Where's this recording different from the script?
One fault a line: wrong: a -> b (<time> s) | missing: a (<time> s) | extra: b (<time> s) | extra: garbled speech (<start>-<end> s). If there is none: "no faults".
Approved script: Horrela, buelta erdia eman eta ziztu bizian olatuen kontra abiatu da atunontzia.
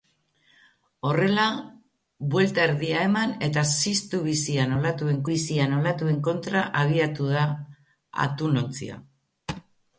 extra: bizian olatuen (5.3 s)